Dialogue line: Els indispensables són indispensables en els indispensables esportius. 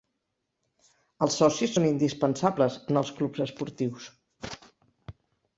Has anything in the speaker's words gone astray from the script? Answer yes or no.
yes